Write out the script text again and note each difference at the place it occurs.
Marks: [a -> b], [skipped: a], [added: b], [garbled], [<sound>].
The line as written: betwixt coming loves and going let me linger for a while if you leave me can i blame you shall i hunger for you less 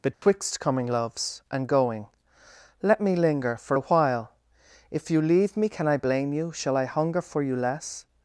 betwixt [dropout] coming loves and going let me linger for a while if you leave me can i blame you shall i hunger for you less